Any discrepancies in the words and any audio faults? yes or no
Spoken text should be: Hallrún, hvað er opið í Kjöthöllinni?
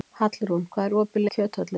no